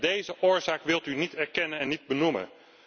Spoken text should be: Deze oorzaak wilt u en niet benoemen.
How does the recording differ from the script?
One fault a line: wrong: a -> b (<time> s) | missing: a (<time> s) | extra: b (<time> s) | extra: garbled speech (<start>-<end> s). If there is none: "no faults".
extra: niet erkennen (1.1 s)